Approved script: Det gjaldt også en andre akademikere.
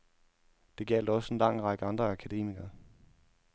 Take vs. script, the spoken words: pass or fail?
fail